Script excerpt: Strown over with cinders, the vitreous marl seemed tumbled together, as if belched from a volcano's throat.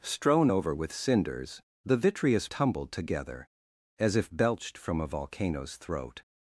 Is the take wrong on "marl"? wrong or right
wrong